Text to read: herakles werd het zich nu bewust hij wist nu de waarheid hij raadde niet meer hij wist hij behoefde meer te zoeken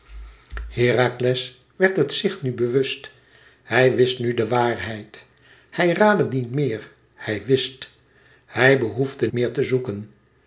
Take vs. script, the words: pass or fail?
pass